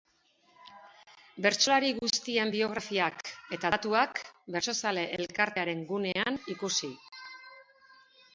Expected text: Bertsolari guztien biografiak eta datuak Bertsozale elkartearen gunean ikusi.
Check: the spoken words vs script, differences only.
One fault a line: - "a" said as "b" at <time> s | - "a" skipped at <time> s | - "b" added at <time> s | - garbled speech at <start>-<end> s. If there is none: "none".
none